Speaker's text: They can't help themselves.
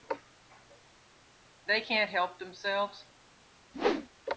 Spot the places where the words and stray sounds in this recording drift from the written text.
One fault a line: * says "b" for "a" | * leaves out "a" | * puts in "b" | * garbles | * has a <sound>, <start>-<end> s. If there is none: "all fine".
* has a whoosh, 3.7-4.1 s